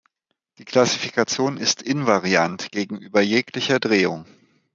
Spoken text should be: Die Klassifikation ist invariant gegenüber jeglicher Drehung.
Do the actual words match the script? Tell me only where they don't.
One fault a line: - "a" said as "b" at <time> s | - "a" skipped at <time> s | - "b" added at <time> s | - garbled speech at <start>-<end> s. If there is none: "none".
none